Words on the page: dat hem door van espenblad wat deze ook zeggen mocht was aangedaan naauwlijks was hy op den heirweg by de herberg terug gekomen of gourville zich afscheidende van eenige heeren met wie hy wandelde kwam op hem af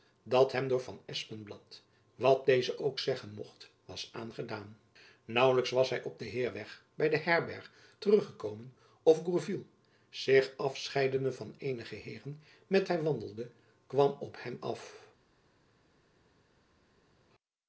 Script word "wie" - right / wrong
wrong